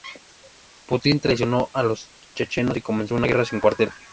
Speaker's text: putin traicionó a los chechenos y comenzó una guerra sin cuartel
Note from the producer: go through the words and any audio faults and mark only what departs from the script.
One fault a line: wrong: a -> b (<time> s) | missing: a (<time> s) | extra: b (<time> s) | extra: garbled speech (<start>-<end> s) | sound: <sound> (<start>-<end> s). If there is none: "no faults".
no faults